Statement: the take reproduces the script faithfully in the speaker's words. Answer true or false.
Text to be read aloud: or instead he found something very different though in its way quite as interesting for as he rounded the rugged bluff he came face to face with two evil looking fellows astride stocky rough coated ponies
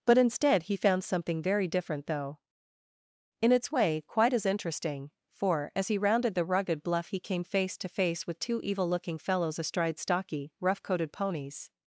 false